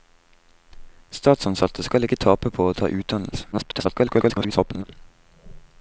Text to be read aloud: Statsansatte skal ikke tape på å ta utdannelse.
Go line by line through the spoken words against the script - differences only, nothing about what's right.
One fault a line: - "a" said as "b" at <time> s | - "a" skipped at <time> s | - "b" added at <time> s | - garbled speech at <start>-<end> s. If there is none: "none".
- garbled speech at 3.5-4.8 s